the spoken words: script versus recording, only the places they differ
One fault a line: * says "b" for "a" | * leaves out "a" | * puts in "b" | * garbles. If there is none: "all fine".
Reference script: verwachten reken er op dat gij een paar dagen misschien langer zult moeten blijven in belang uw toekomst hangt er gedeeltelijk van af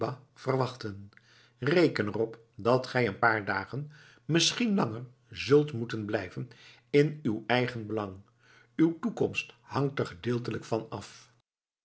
* puts in "uw eigen"